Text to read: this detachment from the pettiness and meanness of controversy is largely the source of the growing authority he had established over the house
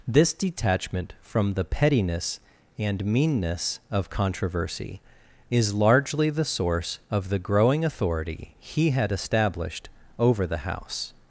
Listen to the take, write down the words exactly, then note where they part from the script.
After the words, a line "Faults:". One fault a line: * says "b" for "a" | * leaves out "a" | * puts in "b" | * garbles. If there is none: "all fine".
this detachment from the pettiness and meanness of controversy is largely the source of the growing authority he had established over the house
Faults:
all fine